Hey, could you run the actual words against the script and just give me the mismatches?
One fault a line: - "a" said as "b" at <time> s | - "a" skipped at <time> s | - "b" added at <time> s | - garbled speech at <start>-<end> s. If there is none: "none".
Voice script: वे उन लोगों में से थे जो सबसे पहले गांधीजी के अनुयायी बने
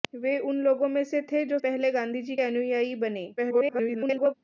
- "सबसे" skipped at 1.6 s
- "के" skipped at 2.4 s
- garbled speech at 3.4-4.3 s